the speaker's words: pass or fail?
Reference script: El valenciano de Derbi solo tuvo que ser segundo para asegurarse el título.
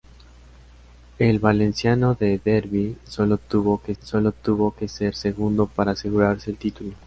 fail